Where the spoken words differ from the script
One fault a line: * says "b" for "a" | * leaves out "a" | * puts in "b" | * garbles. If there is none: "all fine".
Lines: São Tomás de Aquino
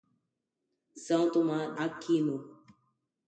* leaves out "de"